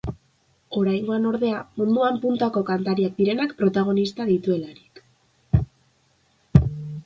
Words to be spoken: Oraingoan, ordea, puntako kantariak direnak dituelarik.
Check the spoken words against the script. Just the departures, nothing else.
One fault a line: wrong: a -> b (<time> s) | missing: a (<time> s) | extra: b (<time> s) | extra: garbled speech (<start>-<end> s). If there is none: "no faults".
extra: munduan (1.8 s)
extra: protagonista (3.6 s)